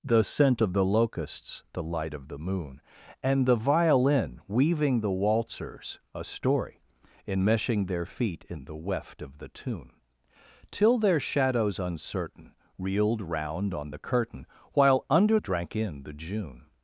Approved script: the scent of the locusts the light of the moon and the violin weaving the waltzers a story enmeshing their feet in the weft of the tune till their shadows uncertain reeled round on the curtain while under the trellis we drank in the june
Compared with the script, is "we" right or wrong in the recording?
wrong